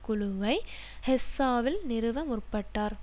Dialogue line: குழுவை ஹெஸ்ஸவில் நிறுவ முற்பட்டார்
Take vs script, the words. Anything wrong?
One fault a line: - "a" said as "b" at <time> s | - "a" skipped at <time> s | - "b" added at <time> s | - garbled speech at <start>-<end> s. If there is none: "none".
none